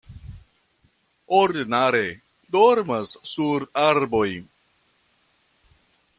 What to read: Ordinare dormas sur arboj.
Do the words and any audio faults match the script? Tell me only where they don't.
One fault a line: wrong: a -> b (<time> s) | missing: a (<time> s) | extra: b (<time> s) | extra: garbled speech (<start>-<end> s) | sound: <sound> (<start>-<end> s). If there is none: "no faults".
no faults